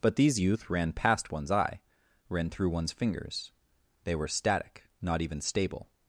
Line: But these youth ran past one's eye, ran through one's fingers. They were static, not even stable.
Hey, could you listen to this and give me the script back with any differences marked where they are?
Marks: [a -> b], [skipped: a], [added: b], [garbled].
But these youth ran past one's eye, ran through one's fingers. They were static, not even stable.